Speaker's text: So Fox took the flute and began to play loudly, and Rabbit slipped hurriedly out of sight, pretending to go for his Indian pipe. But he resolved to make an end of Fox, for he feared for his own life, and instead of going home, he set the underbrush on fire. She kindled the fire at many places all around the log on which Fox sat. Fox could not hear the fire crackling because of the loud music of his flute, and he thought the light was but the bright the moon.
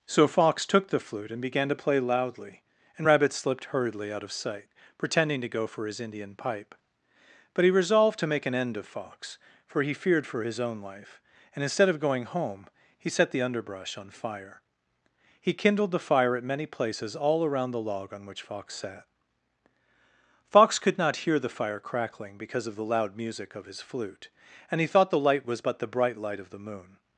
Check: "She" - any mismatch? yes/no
yes